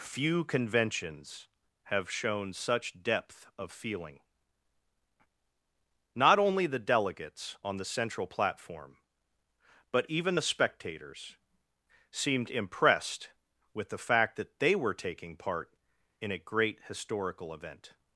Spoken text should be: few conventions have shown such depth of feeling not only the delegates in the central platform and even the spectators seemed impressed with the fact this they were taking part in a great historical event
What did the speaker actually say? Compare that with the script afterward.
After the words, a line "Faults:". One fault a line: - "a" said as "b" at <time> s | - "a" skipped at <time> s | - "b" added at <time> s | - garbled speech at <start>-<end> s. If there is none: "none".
few conventions have shown such depth of feeling not only the delegates on the central platform but even the spectators seemed impressed with the fact that they were taking part in a great historical event
Faults:
- "in" said as "on" at 7.6 s
- "and" said as "but" at 9.9 s
- "this" said as "that" at 14.4 s